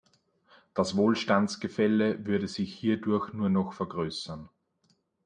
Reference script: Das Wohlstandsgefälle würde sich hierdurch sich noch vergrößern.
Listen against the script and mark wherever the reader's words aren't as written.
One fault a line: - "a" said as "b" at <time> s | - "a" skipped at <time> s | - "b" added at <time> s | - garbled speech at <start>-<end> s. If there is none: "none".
- "sich" said as "nur" at 3.3 s